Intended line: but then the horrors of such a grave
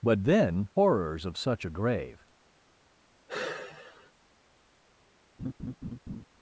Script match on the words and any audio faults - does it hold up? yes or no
no